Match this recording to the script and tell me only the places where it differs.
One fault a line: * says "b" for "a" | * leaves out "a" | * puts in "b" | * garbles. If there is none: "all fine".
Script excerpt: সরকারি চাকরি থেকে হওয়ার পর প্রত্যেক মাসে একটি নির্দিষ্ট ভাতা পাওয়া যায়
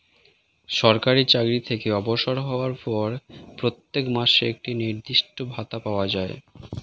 * puts in "অবসর"